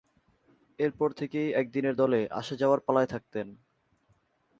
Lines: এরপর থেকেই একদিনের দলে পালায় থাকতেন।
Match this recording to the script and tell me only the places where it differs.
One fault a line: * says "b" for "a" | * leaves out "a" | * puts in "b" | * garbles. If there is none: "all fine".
* puts in "আসা-যাওয়ার"